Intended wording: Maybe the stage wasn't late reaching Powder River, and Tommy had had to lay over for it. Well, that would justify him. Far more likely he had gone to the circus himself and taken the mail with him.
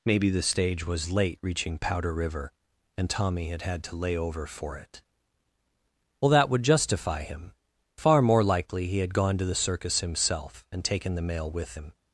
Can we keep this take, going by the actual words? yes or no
no